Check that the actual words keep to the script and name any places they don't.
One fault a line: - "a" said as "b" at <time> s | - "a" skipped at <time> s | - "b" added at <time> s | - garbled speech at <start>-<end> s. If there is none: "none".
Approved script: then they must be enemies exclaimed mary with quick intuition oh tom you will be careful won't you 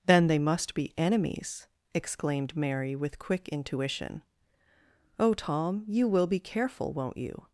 none